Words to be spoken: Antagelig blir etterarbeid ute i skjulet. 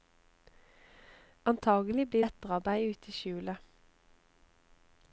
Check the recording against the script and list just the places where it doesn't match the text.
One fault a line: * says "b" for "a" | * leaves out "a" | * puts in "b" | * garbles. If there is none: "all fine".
all fine